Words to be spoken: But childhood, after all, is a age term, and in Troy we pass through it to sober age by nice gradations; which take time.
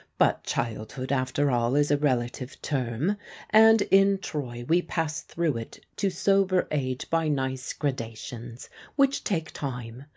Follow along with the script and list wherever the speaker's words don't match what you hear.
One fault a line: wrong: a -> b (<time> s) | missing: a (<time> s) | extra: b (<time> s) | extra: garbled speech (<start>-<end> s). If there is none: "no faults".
wrong: age -> relative (2.0 s)